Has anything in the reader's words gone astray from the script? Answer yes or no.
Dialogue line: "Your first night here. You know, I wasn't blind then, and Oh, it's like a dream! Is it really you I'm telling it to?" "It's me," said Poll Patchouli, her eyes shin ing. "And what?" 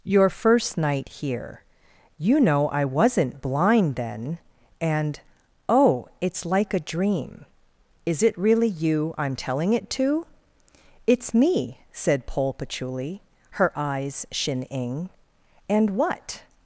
no